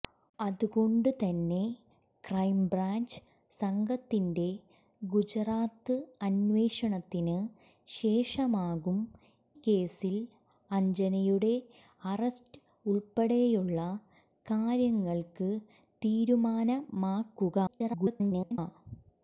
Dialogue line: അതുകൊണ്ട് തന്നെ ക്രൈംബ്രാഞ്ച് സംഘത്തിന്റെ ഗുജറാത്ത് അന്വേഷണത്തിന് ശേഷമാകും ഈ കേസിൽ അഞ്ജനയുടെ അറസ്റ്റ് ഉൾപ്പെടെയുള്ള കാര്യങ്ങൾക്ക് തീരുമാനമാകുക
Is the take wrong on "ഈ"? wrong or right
wrong